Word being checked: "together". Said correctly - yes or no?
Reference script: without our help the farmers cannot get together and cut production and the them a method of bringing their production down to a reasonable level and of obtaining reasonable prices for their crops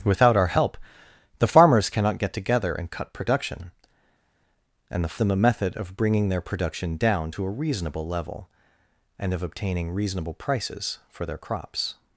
yes